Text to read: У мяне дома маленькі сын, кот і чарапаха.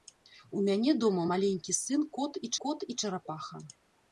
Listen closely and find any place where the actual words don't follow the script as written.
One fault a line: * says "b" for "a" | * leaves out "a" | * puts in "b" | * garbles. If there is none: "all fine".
* puts in "кот і"